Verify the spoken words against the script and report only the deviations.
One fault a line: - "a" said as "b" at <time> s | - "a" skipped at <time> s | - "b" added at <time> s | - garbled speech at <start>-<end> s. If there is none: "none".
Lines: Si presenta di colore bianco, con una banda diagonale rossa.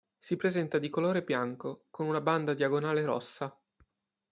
none